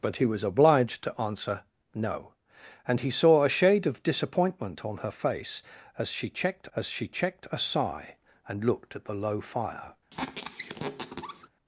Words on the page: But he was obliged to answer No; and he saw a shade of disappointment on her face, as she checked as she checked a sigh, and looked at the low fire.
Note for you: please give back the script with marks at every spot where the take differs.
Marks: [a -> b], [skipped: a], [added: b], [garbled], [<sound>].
But he was obliged to answer No; and he saw a shade of disappointment on her face, as she checked as she checked a sigh, and looked at the low fire. [squeak]